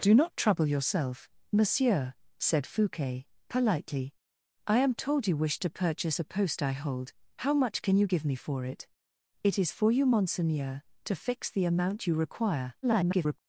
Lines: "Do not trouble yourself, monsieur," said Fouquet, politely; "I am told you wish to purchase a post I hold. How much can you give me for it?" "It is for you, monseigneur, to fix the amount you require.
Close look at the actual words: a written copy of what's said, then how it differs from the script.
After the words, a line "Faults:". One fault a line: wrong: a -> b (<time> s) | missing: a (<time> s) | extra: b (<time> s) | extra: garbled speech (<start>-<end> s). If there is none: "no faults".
"Do not trouble yourself, monsieur," said Fouquet, politely; "I am told you wish to purchase a post I hold. How much can you give me for it?" "It is for you, monseigneur, to fix the amount you require. [garbled]
Faults:
extra: garbled speech (12.8-13.4 s)